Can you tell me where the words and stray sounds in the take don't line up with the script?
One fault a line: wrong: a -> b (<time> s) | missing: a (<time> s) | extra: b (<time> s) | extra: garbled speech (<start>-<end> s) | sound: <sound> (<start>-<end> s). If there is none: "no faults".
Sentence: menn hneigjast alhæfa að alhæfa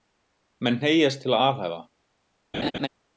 wrong: alhæfa -> til (1.3 s)
sound: laugh (2.5-2.9 s)